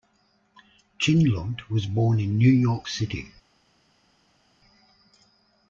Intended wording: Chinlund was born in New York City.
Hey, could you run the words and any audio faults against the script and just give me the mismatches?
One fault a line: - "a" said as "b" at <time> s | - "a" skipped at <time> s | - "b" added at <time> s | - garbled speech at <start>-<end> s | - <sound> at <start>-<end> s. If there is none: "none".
none